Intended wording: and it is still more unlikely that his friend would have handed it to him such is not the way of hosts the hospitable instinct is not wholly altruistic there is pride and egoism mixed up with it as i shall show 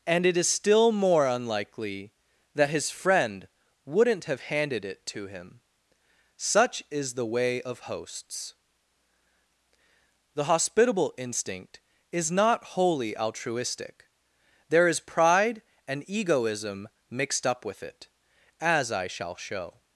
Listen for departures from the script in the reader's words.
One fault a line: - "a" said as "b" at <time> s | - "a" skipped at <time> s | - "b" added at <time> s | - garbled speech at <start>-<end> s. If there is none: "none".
- "would" said as "wouldn't" at 3.9 s
- "not" skipped at 7.1 s